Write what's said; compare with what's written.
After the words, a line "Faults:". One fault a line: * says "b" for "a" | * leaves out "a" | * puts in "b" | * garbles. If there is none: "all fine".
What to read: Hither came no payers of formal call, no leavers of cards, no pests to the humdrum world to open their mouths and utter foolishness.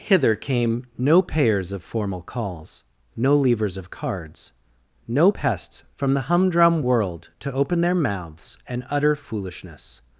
Hither came no payers of formal calls, no leavers of cards, no pests from the humdrum world to open their mouths and utter foolishness.
Faults:
* says "calls" for "call"
* says "from" for "to"